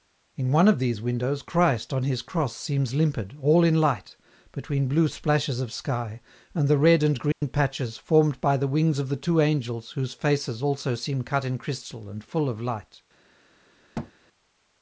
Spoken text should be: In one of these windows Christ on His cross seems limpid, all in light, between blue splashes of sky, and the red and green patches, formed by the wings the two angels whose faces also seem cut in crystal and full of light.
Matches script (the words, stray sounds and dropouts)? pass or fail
fail